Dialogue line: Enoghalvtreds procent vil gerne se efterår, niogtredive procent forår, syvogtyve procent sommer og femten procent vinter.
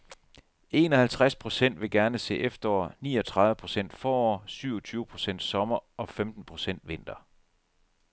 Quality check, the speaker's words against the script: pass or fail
pass